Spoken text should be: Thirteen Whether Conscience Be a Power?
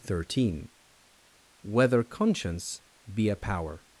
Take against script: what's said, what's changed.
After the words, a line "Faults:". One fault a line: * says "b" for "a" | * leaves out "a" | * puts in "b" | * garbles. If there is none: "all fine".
Thirteen Whether Conscience Be a Power?
Faults:
all fine